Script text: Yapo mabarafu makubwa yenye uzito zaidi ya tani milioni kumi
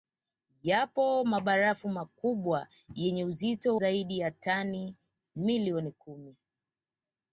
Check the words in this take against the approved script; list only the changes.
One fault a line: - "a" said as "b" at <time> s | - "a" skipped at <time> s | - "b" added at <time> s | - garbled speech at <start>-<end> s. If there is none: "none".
none